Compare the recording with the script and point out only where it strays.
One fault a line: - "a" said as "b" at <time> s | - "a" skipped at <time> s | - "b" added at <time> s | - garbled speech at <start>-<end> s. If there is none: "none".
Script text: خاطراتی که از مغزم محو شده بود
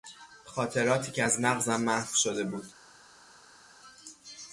none